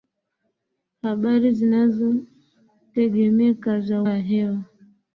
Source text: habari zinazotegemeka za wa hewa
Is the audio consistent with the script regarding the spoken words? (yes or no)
yes